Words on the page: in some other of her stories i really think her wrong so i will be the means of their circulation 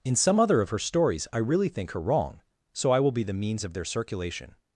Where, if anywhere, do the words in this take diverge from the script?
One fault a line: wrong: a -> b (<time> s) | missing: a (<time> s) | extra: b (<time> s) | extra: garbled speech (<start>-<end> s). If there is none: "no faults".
no faults